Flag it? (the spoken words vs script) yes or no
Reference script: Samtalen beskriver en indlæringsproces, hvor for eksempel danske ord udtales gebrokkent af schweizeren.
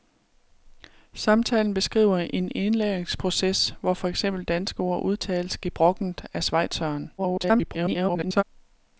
yes